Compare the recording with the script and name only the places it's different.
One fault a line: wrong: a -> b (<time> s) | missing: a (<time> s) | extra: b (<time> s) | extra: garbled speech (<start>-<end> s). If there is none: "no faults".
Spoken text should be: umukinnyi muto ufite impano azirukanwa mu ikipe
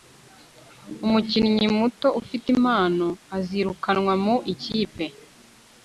no faults